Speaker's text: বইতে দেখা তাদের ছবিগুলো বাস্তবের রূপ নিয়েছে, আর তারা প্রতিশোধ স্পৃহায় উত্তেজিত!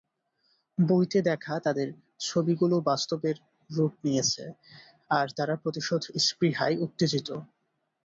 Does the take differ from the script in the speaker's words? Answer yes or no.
no